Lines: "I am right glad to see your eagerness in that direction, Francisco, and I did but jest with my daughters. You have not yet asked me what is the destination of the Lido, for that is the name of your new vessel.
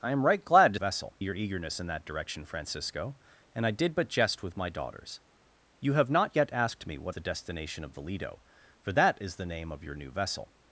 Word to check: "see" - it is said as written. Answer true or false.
false